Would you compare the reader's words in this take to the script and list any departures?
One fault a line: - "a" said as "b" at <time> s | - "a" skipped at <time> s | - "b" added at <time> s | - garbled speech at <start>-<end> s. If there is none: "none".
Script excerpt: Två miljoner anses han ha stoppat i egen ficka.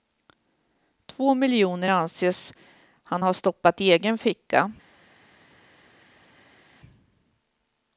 none